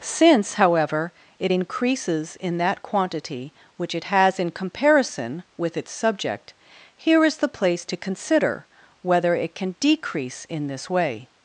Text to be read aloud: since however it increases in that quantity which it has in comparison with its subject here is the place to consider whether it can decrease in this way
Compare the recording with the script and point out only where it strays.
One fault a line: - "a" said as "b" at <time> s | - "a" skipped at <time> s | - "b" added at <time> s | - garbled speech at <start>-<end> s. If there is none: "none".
none